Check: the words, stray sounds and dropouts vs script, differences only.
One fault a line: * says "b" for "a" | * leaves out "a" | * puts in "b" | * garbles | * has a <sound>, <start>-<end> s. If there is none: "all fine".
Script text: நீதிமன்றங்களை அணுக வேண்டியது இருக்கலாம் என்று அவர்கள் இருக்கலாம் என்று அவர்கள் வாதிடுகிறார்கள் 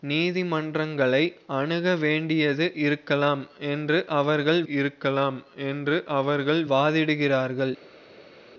all fine